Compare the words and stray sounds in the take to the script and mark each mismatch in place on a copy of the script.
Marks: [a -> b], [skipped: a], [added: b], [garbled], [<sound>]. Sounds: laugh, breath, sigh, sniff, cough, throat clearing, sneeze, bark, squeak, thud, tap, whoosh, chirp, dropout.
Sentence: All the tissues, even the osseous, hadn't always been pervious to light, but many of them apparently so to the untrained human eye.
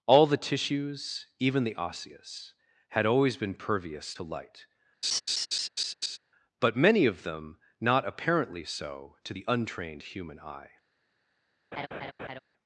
All the tissues, even the osseous, [hadn't -> had] always been pervious to light, [laugh] but many of them [added: not] apparently so to the untrained human eye. [laugh]